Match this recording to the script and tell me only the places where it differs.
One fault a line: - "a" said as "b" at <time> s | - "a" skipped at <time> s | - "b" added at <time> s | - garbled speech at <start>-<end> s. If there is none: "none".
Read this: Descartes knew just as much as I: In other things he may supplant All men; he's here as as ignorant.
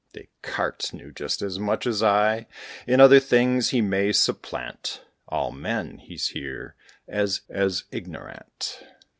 none